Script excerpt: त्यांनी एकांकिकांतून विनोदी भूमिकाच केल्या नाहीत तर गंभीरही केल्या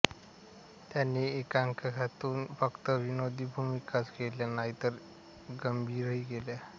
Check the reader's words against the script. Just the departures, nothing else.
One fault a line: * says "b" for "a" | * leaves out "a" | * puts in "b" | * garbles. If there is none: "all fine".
* puts in "फक्त"